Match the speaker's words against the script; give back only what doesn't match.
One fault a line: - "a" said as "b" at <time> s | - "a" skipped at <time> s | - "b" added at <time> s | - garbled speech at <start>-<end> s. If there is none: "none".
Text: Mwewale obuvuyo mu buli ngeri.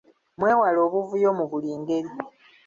none